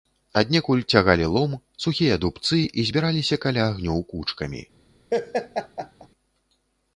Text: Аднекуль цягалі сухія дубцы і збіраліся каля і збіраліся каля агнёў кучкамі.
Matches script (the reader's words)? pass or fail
fail